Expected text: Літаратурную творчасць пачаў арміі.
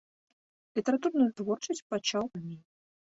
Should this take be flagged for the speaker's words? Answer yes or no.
no